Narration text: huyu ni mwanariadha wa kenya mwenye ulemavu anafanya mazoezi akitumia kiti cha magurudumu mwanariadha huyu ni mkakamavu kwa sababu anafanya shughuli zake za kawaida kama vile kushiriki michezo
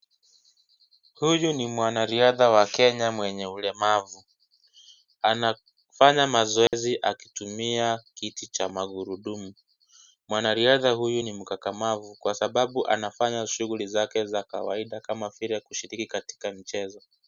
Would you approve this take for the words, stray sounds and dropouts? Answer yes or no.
no